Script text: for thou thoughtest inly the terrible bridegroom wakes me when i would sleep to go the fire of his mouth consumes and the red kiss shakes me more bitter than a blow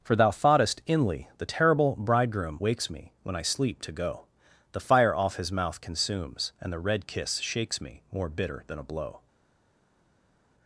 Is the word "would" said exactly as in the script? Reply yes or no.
no